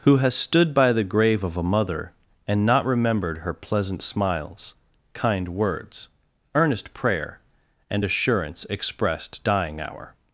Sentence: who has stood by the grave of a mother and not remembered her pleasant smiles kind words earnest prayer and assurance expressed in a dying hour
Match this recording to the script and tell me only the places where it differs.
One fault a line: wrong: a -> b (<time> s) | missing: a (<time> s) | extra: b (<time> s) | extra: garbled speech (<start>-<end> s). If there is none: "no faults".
missing: in a (9.4 s)